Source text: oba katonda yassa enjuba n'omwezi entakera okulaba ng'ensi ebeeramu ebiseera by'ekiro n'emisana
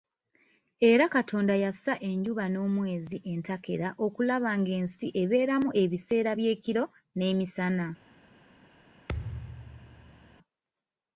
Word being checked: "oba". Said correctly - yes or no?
no